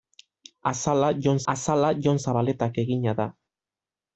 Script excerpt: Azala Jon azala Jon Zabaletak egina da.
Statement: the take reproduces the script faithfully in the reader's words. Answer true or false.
true